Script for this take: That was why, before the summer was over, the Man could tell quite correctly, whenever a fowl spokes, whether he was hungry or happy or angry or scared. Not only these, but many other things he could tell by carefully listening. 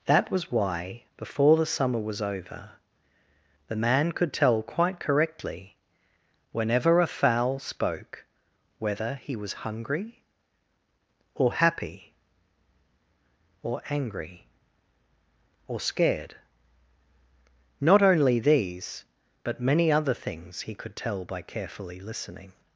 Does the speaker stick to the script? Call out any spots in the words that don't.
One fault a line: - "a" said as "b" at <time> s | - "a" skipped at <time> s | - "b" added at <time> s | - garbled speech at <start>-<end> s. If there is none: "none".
- "spokes" said as "spoke" at 7.6 s